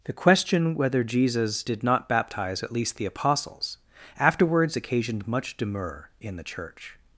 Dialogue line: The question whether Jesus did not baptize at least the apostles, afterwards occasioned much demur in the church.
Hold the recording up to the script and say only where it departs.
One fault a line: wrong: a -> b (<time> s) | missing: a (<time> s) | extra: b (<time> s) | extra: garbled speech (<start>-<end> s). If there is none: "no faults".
no faults